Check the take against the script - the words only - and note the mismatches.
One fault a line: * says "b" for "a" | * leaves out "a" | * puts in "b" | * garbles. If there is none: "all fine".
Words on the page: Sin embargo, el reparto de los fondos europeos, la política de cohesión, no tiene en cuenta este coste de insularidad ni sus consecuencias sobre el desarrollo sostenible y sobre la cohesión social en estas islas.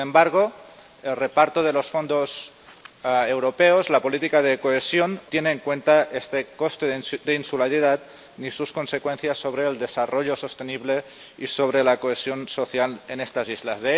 * leaves out "no"